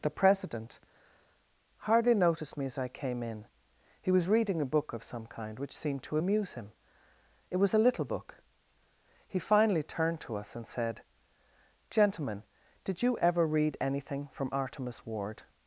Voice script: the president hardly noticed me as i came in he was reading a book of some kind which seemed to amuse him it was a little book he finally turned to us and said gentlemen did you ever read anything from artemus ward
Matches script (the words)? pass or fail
pass